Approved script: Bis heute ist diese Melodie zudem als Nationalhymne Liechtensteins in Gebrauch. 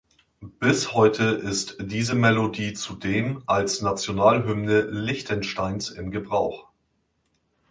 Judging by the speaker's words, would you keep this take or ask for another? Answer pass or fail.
pass